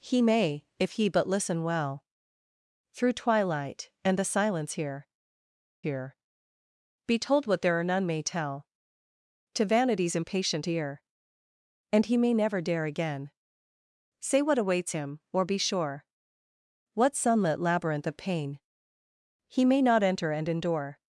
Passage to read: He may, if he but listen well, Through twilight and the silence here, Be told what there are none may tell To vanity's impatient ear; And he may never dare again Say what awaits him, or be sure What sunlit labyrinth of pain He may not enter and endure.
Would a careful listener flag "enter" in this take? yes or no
no